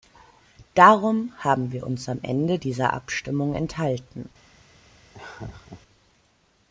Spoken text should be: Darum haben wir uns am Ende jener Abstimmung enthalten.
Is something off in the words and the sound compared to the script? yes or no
yes